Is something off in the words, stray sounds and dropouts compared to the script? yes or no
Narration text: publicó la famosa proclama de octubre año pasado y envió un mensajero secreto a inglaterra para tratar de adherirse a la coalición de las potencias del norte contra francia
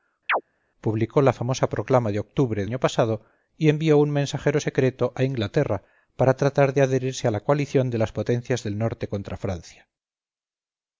yes